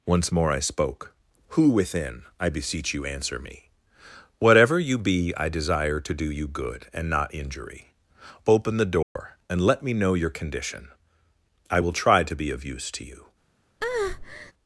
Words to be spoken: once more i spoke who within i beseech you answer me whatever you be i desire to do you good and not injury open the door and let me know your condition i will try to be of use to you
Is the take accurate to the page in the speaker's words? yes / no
yes